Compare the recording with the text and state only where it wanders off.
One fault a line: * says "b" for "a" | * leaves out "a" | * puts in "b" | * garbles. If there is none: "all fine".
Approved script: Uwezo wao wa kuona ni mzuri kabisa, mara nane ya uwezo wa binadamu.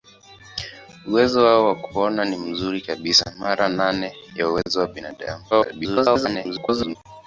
* garbles